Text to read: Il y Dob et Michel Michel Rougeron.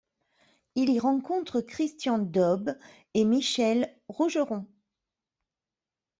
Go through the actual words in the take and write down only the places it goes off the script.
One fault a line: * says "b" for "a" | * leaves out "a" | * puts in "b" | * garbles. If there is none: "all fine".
* puts in "rencontre Christian"
* leaves out "Michel"